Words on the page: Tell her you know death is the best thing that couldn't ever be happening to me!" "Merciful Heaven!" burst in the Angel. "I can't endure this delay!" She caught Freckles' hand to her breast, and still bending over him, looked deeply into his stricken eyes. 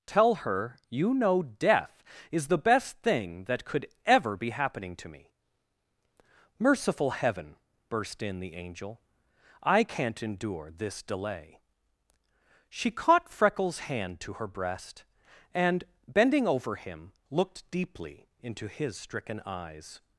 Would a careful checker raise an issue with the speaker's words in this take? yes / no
yes